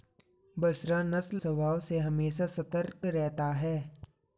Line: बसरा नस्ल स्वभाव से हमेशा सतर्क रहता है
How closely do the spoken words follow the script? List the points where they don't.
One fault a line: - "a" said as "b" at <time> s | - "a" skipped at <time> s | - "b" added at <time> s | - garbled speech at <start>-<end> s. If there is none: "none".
none